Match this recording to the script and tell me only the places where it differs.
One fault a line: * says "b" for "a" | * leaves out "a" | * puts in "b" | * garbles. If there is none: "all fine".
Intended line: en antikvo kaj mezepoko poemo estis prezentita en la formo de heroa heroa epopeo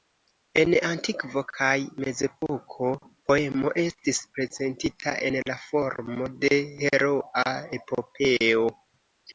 * leaves out "heroa"